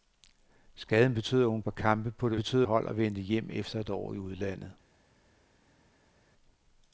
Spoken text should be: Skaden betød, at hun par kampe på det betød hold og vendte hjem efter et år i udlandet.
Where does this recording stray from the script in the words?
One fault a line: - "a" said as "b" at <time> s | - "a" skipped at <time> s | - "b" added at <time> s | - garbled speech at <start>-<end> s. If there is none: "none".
none